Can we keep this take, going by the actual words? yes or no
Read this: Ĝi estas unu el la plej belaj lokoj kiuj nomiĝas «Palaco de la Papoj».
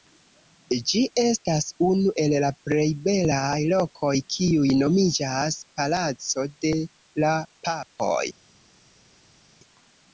yes